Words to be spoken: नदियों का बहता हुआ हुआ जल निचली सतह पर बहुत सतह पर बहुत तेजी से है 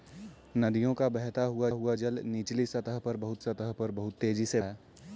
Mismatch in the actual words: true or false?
false